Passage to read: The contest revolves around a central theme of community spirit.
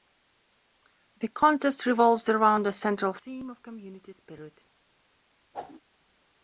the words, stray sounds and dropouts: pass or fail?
fail